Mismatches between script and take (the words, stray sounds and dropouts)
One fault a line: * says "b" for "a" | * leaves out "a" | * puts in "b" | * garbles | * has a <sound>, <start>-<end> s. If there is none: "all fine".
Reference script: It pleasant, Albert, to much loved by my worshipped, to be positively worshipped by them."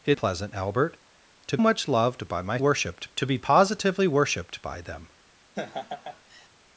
* has a laugh, 5.5-6.5 s